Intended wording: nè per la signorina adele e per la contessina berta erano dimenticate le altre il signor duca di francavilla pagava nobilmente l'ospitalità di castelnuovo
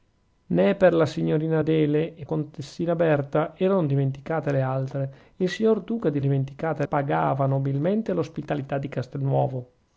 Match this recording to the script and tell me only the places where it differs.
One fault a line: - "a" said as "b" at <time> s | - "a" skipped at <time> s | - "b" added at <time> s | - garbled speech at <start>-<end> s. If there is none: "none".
- "per la" skipped at 2.2 s
- "francavilla" said as "dimenticate" at 6.2 s